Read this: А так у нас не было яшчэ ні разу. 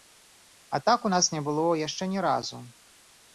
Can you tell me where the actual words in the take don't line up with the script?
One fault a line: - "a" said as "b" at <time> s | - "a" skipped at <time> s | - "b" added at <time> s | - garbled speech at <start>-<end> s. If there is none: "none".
none